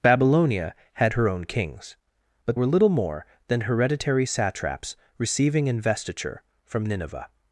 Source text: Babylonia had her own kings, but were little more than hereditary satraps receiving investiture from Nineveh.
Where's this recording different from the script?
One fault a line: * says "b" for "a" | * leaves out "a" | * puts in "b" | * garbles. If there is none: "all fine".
all fine